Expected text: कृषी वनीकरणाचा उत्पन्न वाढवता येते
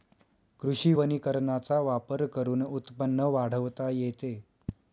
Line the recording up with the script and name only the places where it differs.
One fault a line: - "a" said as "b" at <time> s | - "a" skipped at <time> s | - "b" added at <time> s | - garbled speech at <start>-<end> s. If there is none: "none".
- "वापर करून" added at 1.8 s